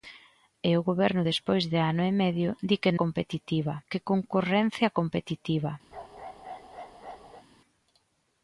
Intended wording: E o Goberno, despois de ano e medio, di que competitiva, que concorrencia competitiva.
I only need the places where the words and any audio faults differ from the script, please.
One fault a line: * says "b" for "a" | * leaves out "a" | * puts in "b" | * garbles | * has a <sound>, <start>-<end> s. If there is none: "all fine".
* has a bark, 5.9-7.4 s